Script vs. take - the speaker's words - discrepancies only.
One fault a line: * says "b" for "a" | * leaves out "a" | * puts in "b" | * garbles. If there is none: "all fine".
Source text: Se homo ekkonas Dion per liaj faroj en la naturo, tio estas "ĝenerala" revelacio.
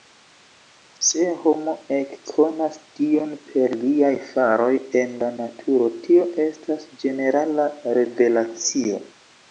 all fine